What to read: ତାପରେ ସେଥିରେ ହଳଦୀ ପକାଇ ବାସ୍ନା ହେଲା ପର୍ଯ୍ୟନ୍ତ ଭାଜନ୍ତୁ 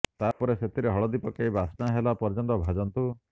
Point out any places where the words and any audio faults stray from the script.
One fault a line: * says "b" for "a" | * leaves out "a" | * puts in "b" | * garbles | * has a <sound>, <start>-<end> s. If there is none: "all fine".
* has a dropout, 0.3-0.4 s